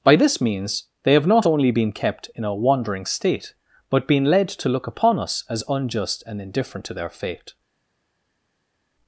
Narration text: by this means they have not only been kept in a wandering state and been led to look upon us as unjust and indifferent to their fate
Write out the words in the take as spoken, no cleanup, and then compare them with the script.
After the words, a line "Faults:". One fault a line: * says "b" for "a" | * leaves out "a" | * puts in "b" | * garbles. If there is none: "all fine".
by this means they have not only been kept in a wandering state but been led to look upon us as unjust and indifferent to their fate
Faults:
* says "but" for "and"